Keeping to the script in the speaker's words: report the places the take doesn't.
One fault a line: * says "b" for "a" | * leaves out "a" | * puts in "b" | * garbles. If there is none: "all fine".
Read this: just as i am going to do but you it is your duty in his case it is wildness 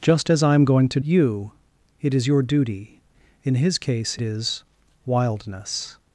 * leaves out "do but"
* leaves out "it"